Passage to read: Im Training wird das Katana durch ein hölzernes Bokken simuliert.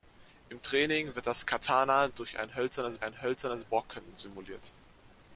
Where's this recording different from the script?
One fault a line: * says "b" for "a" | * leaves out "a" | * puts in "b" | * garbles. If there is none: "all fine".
* puts in "ein hölzernes"